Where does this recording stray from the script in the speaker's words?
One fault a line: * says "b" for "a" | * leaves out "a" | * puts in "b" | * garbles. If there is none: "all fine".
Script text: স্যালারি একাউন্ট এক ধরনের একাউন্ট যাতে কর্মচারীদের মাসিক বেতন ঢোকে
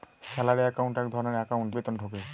* leaves out "যাতে কর্মচারীদের মাসিক"